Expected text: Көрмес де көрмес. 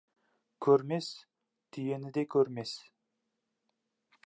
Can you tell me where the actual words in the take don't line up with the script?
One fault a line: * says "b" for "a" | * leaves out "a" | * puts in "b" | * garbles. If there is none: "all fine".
* puts in "түйені"